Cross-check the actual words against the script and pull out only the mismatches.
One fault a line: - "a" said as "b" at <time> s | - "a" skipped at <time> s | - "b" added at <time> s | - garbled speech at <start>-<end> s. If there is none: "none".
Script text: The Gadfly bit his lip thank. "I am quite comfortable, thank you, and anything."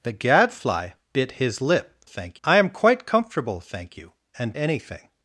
none